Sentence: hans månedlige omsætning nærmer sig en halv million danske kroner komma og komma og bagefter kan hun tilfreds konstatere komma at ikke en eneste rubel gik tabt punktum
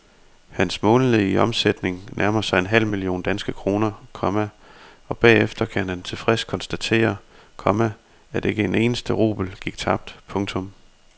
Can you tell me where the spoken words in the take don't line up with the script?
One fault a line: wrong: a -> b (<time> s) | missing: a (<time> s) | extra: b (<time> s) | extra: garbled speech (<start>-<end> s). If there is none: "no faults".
missing: komma og (5.2 s)
wrong: hun -> han (5.9 s)